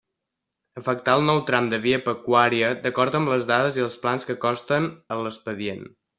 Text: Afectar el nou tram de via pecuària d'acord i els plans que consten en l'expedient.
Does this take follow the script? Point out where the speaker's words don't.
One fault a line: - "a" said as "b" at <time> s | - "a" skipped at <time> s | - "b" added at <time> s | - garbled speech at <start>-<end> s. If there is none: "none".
- "amb les dades" added at 3.2 s